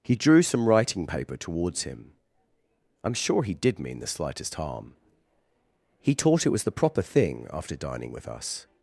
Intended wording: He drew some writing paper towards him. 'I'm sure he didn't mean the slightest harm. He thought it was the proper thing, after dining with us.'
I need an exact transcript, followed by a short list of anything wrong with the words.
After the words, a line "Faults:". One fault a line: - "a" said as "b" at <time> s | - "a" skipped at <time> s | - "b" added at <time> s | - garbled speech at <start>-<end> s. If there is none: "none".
He drew some writing paper towards him. 'I'm sure he did mean the slightest harm. He taught it was the proper thing, after dining with us.'
Faults:
- "didn't" said as "did" at 3.5 s
- "thought" said as "taught" at 6.2 s